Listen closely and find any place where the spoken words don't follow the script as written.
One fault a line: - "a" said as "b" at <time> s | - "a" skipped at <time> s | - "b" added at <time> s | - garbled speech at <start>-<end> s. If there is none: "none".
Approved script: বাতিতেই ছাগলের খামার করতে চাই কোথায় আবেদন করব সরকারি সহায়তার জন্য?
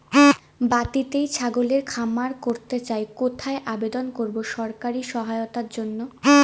none